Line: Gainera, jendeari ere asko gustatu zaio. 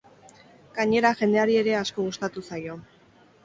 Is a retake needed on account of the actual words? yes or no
no